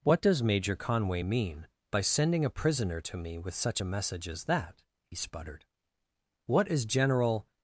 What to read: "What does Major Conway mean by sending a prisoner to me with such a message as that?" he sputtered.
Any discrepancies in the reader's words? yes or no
yes